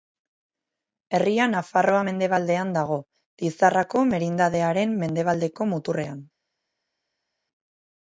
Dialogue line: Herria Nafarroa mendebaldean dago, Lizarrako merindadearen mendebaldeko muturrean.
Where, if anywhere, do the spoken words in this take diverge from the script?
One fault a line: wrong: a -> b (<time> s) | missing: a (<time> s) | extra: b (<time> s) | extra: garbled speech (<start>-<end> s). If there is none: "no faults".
no faults